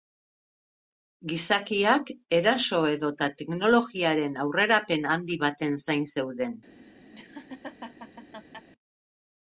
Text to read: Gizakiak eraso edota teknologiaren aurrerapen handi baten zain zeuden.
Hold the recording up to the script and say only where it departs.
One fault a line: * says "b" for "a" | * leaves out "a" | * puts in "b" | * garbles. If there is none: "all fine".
all fine